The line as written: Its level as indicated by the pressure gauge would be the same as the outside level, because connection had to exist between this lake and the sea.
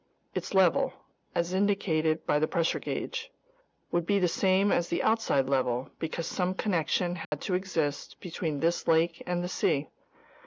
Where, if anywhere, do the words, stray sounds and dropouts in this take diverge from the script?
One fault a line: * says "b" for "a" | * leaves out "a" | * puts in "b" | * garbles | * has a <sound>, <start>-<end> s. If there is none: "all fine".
* puts in "some"
* has a dropout, 7.2-7.3 s